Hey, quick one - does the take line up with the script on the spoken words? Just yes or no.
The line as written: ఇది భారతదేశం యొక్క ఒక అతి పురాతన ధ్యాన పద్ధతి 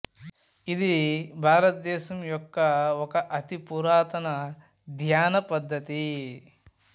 yes